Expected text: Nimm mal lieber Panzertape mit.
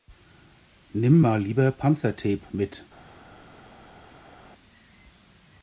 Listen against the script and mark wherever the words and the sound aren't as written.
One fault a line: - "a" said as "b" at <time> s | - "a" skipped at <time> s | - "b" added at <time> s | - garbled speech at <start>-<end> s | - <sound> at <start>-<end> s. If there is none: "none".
none